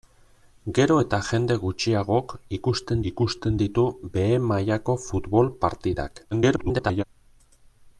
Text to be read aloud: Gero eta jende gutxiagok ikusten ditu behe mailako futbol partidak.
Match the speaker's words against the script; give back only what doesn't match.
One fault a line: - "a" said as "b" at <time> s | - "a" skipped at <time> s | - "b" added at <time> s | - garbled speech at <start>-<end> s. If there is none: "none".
- "ikusten" added at 3.1 s
- garbled speech at 6.3-7.0 s